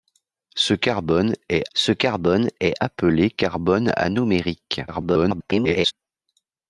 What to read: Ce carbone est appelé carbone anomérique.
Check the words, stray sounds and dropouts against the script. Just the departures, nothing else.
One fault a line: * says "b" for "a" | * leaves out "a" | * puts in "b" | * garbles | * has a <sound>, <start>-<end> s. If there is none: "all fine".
* puts in "ce carbone est"
* garbles